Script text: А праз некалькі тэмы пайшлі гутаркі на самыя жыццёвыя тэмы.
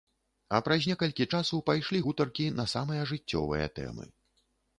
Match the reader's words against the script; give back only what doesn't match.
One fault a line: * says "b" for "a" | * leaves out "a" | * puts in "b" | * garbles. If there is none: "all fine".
* says "часу" for "тэмы"